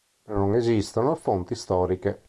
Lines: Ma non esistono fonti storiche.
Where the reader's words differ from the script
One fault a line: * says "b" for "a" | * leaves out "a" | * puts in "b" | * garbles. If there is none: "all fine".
all fine